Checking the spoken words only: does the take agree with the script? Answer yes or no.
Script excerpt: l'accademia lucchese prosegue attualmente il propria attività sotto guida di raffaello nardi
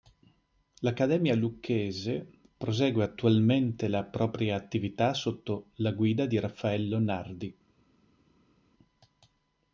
no